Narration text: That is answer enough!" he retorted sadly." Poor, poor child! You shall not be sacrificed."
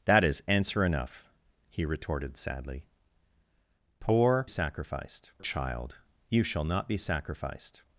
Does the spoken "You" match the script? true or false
true